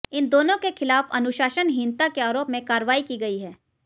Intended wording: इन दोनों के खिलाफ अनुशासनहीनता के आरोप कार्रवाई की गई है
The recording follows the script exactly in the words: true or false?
false